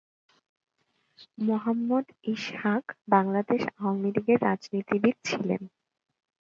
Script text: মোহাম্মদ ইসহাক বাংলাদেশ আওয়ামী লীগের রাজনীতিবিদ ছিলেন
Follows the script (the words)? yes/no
yes